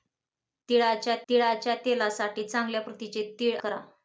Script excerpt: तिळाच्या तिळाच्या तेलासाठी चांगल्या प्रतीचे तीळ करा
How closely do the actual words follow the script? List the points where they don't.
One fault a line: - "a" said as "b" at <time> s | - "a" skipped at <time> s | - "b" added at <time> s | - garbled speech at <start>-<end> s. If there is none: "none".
none